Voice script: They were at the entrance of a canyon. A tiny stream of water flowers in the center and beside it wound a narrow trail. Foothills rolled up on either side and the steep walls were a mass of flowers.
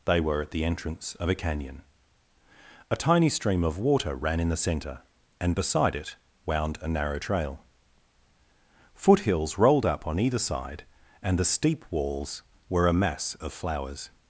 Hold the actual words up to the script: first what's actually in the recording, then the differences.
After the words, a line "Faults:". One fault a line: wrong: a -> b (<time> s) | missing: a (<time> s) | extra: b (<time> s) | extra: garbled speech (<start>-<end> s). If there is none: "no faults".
They were at the entrance of a canyon. A tiny stream of water ran in the center and beside it wound a narrow trail. Foothills rolled up on either side and the steep walls were a mass of flowers.
Faults:
wrong: flowers -> ran (4.2 s)